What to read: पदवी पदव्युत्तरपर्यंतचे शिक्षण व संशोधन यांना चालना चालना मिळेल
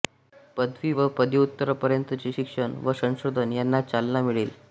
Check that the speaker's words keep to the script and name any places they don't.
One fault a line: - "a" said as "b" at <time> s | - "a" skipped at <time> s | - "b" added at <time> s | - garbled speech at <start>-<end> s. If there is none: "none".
- "व" added at 0.9 s
- "चालना" skipped at 4.2 s